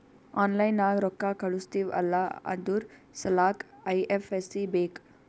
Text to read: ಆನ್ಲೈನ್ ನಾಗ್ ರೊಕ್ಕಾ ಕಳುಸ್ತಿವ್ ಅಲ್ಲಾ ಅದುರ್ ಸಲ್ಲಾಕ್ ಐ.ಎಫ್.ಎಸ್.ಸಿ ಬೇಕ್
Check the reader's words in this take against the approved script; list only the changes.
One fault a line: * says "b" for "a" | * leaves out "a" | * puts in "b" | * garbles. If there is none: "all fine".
all fine